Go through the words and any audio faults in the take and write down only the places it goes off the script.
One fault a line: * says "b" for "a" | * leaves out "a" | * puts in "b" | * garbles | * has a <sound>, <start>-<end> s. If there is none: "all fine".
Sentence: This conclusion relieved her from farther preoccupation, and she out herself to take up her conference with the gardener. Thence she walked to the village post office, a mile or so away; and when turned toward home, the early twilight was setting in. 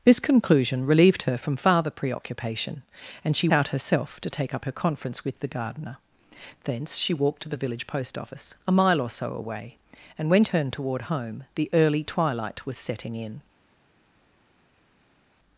all fine